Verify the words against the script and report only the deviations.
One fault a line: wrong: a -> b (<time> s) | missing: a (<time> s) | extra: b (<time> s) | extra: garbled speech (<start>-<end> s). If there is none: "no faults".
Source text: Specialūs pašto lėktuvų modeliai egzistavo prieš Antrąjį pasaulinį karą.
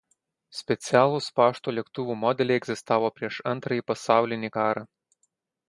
no faults